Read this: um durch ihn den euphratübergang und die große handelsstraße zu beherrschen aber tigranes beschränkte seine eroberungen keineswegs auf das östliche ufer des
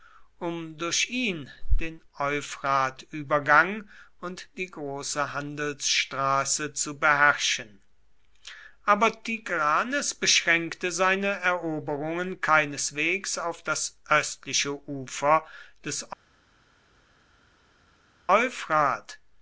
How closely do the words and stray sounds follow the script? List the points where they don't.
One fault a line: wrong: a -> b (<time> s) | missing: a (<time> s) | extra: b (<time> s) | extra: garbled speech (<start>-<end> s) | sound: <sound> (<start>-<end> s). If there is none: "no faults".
no faults